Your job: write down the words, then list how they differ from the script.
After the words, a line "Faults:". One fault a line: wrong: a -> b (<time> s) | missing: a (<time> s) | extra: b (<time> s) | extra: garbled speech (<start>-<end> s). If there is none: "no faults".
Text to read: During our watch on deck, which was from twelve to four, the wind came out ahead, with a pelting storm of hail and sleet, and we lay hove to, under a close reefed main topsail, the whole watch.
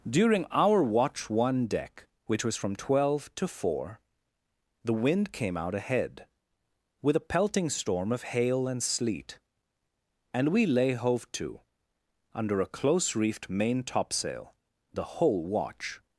During our watch one deck, which was from twelve to four, the wind came out ahead, with a pelting storm of hail and sleet, and we lay hove to, under a close reefed main topsail, the whole watch.
Faults:
wrong: on -> one (1.3 s)